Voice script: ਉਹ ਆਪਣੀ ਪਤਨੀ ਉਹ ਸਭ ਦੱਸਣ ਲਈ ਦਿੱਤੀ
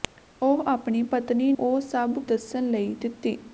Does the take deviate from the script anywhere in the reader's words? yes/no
no